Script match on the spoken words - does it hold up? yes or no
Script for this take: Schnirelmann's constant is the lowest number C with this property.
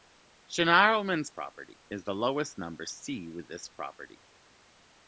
no